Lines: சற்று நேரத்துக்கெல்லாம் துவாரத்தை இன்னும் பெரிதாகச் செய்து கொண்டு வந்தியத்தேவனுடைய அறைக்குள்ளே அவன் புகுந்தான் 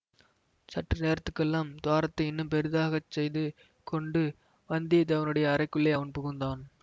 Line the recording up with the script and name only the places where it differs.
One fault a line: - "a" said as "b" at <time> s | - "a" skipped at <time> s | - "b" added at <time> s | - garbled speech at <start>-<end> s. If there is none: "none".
none